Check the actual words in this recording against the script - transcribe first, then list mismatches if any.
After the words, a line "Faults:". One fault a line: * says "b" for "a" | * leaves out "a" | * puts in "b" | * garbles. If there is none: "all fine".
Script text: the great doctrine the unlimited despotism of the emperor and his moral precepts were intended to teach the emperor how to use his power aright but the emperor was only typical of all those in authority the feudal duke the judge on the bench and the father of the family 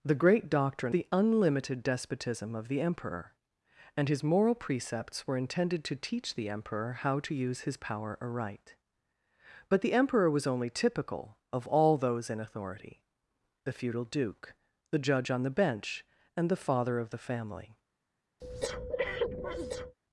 the great doctrine the unlimited despotism of the emperor and his moral precepts were intended to teach the emperor how to use his power aright but the emperor was only typical of all those in authority the feudal duke the judge on the bench and the father of the family
Faults:
all fine